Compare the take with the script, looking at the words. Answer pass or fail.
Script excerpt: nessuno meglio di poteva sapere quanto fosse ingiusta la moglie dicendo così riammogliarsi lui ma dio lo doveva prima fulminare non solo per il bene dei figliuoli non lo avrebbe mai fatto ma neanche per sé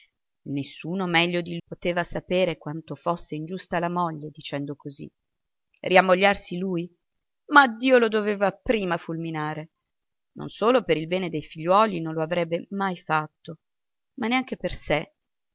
pass